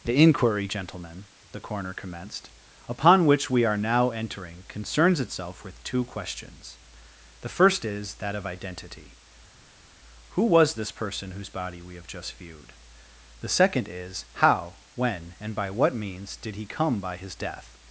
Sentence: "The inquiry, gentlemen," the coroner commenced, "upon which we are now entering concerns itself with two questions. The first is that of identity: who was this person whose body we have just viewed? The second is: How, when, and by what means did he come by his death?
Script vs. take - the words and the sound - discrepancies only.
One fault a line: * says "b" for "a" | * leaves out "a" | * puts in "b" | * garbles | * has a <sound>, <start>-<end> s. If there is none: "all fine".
all fine